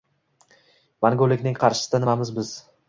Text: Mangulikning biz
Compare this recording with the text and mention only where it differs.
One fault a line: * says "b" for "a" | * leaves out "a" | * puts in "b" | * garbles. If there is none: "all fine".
* puts in "qarshisida nimamiz"